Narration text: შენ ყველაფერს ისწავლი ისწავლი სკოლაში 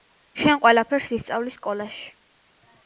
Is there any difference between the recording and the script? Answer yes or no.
yes